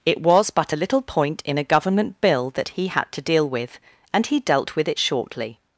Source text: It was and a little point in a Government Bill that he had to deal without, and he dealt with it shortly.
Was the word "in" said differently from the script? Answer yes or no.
no